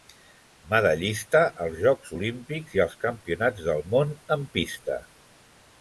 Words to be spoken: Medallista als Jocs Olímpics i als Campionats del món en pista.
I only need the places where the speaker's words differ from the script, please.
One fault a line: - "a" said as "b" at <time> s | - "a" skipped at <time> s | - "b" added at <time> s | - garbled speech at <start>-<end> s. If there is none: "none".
none